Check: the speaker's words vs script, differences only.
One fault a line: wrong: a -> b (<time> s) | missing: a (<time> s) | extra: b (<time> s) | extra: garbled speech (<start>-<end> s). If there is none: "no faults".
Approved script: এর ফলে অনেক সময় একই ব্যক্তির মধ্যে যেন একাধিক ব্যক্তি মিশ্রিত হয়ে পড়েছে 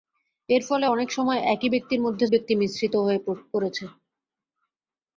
missing: যেন একাধিক (2.2 s)